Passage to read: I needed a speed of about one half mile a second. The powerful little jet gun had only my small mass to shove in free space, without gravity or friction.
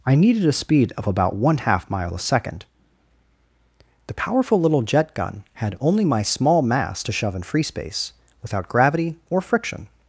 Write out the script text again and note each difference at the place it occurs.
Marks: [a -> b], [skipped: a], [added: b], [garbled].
I needed a speed of about one half mile a second. The powerful little jet gun had only my small mass to shove in free space, without gravity or friction.